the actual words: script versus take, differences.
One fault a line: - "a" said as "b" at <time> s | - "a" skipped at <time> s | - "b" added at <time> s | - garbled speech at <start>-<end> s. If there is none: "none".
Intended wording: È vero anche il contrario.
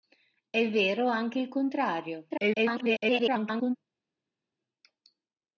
- garbled speech at 2.3-3.8 s